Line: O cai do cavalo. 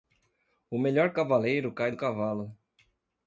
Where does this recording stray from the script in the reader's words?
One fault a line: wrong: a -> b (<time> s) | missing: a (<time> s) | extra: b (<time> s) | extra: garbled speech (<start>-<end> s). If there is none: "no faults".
extra: melhor cavaleiro (0.8 s)